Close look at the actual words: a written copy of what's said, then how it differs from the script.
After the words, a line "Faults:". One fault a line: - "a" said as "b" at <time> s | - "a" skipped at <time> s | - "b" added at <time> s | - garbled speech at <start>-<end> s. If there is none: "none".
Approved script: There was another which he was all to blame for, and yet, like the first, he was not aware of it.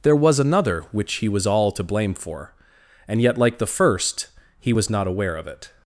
There was another which he was all to blame for, and yet, like the first, he was not aware of it.
Faults:
none